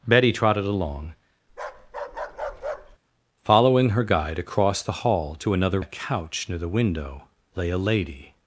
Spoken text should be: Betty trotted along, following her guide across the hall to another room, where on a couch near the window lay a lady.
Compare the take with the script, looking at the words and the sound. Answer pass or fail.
fail